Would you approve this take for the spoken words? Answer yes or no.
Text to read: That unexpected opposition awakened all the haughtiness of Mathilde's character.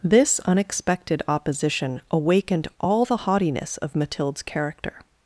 no